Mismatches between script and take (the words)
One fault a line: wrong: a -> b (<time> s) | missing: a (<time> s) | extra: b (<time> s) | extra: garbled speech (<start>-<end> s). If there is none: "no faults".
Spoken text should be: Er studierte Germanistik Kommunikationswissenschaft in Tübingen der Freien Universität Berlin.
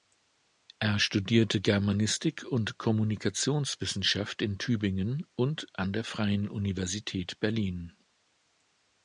extra: und (2.5 s)
extra: und an (5.3 s)